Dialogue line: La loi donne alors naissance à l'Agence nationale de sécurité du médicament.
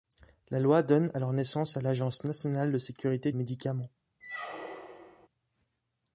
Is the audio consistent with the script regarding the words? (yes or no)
no